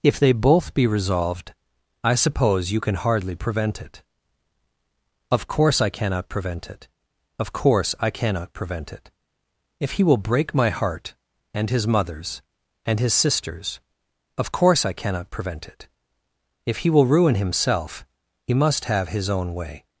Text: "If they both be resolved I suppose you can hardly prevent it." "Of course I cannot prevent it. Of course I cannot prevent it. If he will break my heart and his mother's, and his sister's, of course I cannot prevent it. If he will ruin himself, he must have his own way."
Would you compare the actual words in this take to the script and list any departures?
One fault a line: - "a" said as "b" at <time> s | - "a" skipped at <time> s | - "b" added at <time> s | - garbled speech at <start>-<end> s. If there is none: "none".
none